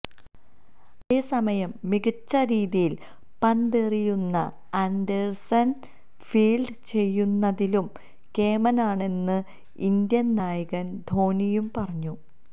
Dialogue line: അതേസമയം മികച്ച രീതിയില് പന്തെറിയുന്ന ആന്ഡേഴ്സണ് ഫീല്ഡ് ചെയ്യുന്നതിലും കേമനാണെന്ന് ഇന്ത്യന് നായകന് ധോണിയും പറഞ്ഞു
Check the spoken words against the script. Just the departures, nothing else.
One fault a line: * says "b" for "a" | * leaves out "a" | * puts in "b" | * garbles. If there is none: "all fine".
all fine